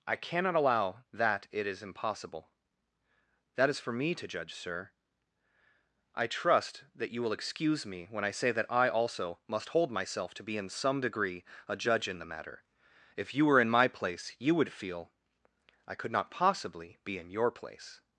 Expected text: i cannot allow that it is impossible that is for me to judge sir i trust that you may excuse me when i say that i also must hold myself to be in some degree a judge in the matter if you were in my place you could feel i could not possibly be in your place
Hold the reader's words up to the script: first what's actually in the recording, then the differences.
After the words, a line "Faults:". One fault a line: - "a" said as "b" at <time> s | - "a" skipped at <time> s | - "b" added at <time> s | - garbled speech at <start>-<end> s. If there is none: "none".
i cannot allow that it is impossible that is for me to judge sir i trust that you will excuse me when i say that i also must hold myself to be in some degree a judge in the matter if you were in my place you would feel i could not possibly be in your place
Faults:
- "may" said as "will" at 7.2 s
- "could" said as "would" at 14.6 s